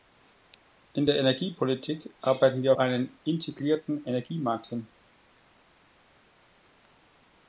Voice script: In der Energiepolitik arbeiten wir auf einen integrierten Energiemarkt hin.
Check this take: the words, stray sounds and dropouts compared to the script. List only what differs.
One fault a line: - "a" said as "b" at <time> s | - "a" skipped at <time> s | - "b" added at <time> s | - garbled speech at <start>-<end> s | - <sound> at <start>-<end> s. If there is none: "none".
- "auf" skipped at 2.7 s